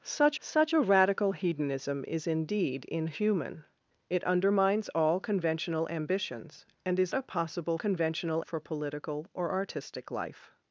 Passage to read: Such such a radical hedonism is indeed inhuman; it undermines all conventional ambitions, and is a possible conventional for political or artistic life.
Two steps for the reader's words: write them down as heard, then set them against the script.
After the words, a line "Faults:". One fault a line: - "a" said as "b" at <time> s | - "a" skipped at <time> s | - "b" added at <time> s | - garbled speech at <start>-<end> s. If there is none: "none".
Such such a radical hedonism is indeed inhuman; it undermines all conventional ambitions, and is a possible conventional for political or artistic life.
Faults:
none